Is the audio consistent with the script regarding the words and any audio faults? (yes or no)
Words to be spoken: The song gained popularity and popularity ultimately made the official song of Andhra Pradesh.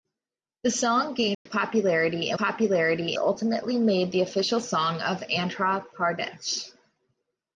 no